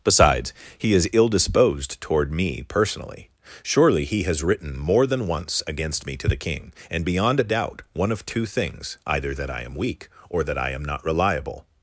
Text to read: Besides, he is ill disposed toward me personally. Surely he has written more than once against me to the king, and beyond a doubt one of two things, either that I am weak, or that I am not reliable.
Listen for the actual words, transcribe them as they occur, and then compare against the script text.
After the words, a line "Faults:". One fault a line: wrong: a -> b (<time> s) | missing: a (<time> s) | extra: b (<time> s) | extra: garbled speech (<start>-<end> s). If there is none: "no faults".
Besides, he is ill disposed toward me personally. Surely he has written more than once against me to the king, and beyond a doubt one of two things, either that I am weak, or that I am not reliable.
Faults:
no faults